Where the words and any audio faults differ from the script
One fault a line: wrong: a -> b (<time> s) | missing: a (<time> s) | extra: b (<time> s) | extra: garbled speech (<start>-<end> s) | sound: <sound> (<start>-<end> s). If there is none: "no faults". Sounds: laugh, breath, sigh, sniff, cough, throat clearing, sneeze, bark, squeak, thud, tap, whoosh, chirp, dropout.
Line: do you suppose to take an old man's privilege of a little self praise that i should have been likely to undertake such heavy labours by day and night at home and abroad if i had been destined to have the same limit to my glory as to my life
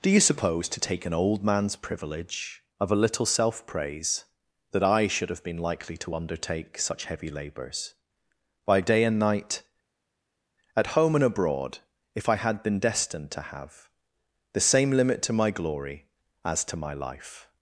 no faults